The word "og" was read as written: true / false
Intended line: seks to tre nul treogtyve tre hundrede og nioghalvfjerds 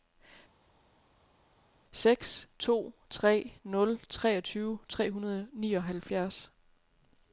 true